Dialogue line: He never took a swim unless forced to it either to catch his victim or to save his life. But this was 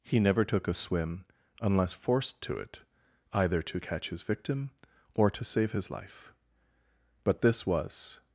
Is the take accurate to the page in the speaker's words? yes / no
yes